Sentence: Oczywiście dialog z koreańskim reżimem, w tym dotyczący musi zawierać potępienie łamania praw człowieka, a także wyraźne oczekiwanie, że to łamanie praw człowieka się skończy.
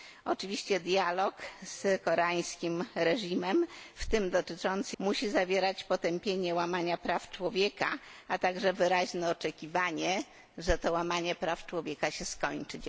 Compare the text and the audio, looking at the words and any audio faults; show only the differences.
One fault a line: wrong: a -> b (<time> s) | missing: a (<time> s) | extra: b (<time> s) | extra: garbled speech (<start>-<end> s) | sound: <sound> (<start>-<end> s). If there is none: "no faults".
no faults